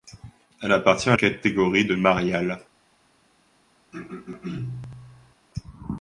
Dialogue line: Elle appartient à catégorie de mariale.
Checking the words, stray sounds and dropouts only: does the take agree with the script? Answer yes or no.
no